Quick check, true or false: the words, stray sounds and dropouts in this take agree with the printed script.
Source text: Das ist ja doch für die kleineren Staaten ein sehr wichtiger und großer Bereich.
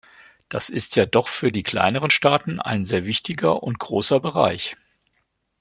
true